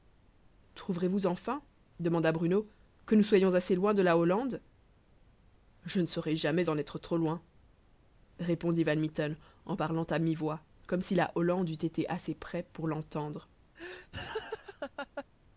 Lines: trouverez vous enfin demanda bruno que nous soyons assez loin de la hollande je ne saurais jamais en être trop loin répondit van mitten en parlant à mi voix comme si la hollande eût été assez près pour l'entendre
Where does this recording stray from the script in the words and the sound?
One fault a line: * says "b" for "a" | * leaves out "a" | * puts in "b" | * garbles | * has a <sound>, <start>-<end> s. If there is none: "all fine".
* has a laugh, 13.7-15.2 s